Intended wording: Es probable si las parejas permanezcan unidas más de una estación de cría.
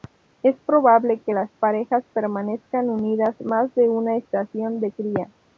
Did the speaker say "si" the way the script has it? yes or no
no